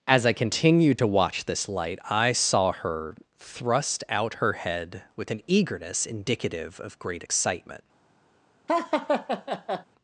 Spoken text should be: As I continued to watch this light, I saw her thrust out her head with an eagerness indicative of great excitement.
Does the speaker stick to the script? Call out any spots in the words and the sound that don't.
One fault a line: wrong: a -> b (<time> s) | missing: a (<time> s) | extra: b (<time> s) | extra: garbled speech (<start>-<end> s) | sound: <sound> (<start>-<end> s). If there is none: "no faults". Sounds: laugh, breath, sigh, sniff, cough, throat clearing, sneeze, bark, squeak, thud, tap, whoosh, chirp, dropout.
sound: laugh (8.7-9.9 s)